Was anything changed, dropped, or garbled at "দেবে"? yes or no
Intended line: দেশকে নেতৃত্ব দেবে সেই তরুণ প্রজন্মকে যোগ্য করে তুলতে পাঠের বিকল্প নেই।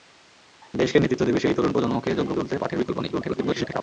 no